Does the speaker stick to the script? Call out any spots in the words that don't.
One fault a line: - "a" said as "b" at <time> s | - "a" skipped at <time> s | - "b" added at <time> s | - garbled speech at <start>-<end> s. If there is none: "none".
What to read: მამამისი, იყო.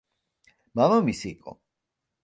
none